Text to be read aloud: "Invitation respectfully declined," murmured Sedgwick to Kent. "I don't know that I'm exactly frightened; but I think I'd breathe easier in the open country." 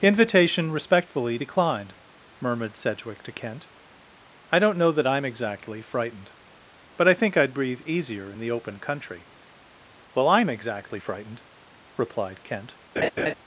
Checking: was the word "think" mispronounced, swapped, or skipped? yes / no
no